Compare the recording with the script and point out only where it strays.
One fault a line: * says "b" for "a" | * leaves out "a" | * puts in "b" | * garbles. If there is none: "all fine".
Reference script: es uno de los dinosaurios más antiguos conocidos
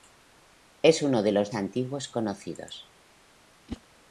* leaves out "dinosaurios más"